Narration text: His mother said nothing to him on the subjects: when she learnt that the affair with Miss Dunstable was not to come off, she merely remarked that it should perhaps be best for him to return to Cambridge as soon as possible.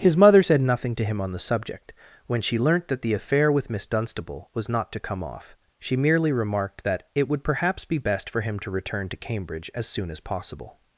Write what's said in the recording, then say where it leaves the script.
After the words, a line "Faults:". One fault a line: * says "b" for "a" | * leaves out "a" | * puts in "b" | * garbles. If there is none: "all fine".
His mother said nothing to him on the subject: when she learnt that the affair with Miss Dunstable was not to come off, she merely remarked that it would perhaps be best for him to return to Cambridge as soon as possible.
Faults:
* says "subject" for "subjects"
* says "would" for "should"